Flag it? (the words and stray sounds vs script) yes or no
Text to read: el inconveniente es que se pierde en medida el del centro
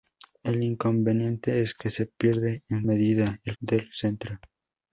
no